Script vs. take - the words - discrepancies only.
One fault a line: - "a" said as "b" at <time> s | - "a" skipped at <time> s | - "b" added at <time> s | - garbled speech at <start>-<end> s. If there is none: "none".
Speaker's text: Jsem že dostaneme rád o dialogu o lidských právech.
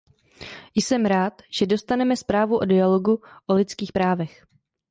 - "rád" added at 1.1 s
- "rád" said as "zprávu" at 2.2 s